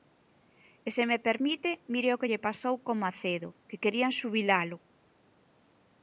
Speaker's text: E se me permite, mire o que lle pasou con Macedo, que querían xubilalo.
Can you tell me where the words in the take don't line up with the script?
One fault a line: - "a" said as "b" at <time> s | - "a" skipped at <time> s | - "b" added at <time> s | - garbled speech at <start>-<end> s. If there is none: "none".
none